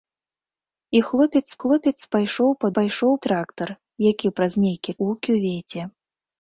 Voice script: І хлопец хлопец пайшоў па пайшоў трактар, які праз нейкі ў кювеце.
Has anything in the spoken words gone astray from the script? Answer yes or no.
no